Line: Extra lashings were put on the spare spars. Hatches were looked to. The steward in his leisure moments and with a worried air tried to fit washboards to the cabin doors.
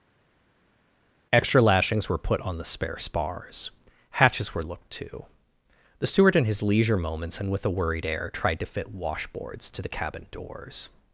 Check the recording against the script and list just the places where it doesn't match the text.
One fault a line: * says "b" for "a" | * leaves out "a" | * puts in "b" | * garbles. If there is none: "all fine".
all fine